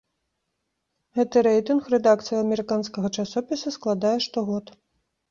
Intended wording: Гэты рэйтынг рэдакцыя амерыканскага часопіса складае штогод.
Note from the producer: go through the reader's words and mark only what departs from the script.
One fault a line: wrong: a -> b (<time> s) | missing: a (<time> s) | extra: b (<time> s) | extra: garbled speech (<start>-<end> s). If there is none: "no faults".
no faults